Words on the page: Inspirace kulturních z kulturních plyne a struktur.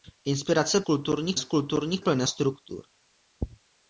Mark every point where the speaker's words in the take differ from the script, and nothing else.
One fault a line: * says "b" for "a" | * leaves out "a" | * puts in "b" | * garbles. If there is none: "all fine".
all fine